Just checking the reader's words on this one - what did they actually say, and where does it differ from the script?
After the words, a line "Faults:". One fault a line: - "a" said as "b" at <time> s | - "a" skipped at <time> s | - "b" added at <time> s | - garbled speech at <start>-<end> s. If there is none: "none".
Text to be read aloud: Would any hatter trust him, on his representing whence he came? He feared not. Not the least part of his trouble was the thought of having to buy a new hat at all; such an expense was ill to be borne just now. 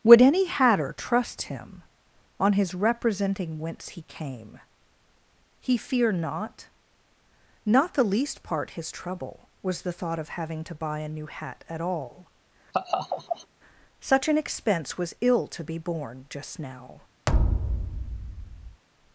Would any hatter trust him, on his representing whence he came? He fear not. Not the least part his trouble was the thought of having to buy a new hat at all; such an expense was ill to be borne just now.
Faults:
- "feared" said as "fear" at 5.8 s
- "of" skipped at 8.7 s